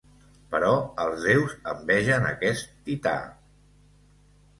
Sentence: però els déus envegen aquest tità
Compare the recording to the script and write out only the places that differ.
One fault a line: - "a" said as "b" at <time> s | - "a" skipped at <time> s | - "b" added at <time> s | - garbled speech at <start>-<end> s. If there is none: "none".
none